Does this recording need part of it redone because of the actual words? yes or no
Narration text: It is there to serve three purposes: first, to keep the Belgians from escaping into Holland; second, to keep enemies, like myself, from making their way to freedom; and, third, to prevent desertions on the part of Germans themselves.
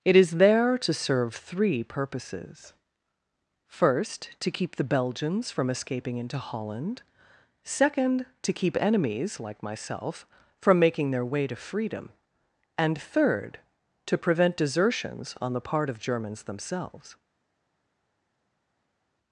no